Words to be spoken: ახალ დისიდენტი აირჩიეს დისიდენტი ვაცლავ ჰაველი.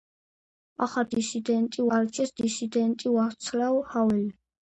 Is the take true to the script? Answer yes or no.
yes